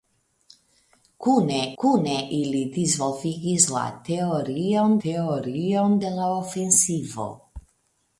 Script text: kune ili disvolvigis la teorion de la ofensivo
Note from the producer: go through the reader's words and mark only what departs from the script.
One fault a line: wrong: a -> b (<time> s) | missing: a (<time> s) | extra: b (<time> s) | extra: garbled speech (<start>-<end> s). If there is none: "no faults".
extra: kune (1.8 s)
extra: teorion (5.1 s)